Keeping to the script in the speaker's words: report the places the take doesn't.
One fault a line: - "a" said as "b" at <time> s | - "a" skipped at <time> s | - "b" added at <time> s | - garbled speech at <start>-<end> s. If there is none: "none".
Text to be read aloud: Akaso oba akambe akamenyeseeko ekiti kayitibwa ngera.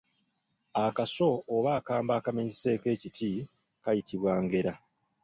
none